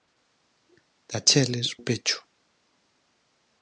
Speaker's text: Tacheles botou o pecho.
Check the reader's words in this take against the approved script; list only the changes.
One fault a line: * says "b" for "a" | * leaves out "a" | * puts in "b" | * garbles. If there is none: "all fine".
* leaves out "botou"